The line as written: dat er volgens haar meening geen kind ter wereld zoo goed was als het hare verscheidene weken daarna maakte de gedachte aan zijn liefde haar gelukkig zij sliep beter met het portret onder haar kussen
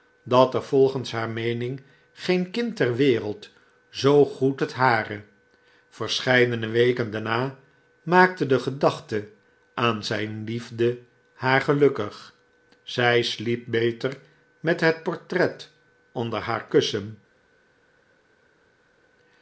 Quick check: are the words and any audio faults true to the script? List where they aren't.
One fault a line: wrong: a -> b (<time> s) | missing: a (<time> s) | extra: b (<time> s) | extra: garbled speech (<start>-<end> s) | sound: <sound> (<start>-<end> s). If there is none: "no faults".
missing: was als (4.6 s)